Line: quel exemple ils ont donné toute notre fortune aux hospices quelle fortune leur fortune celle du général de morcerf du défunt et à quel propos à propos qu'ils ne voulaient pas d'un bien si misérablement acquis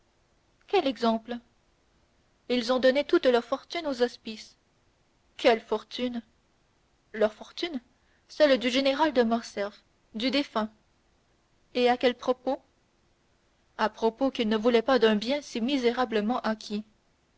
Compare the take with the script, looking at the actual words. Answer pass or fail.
fail